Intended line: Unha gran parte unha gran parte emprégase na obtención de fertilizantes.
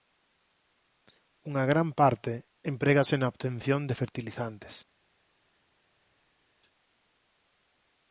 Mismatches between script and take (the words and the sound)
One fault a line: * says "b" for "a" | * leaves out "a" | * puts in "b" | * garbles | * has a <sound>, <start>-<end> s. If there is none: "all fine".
* leaves out "unha gran parte"